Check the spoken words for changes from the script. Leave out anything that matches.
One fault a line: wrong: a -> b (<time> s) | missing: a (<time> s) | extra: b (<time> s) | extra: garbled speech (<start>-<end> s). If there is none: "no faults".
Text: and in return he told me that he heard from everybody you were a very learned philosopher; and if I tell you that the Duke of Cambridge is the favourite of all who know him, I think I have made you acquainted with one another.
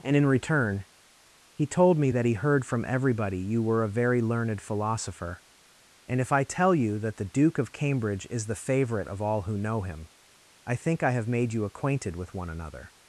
no faults